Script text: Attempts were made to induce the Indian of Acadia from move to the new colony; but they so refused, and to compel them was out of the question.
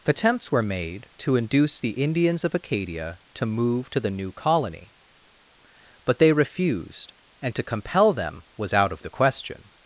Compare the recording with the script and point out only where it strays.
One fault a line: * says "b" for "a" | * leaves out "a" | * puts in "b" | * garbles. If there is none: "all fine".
* says "Indians" for "Indian"
* says "to" for "from"
* leaves out "so"